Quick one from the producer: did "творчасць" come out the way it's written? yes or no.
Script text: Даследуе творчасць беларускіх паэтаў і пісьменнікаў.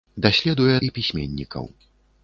no